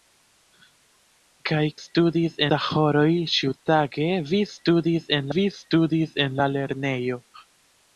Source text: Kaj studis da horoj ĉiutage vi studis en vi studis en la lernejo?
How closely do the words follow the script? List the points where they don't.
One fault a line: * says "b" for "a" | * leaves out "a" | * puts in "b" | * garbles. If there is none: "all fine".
all fine